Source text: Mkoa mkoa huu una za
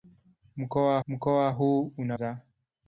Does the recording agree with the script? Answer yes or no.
yes